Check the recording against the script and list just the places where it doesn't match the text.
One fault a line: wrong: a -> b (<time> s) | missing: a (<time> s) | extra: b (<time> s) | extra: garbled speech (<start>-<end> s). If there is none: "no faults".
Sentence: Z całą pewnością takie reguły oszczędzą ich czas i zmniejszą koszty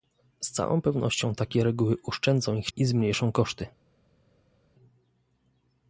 missing: czas (2.7 s)